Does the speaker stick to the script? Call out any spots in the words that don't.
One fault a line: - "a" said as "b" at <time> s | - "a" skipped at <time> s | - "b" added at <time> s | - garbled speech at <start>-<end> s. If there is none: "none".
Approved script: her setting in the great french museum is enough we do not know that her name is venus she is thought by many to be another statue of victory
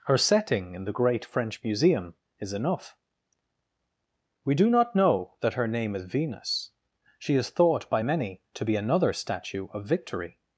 none